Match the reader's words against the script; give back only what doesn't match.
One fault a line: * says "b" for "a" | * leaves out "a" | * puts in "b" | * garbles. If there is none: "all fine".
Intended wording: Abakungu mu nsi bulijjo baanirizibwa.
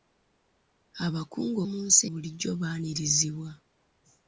all fine